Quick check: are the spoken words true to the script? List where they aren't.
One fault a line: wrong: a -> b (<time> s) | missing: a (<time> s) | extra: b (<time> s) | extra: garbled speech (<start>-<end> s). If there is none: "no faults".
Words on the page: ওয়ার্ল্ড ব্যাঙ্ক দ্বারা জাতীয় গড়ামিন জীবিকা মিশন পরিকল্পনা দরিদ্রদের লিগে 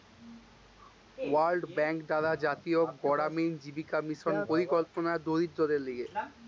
no faults